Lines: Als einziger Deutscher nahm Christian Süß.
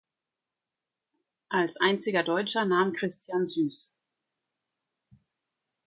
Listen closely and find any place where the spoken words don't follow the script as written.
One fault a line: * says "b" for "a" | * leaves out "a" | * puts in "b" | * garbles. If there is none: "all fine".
all fine